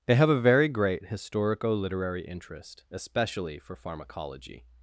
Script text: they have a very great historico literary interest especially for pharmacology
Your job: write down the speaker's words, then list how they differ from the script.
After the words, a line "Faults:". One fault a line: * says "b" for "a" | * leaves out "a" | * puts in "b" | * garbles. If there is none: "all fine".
they have a very great historico literary interest especially for pharmacology
Faults:
all fine